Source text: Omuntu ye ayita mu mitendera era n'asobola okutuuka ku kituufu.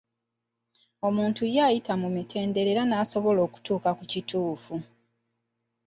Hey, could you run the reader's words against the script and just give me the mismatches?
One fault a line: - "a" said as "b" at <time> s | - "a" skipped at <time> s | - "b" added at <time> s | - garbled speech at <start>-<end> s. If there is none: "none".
none